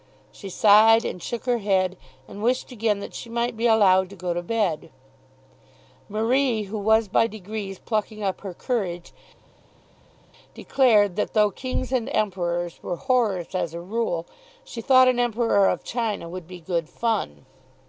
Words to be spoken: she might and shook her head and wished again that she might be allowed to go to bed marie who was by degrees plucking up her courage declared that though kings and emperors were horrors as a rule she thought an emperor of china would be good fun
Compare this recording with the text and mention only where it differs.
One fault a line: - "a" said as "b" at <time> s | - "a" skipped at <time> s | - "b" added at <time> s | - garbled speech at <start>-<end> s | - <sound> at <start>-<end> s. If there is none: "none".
- "might" said as "sighed" at 0.5 s